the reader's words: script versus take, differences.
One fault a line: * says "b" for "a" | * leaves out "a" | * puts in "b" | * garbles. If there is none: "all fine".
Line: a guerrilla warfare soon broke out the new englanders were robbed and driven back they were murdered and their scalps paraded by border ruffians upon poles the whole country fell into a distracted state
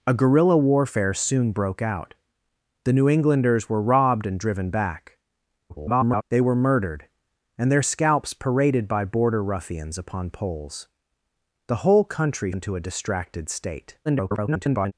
* garbles
* leaves out "fell"
* garbles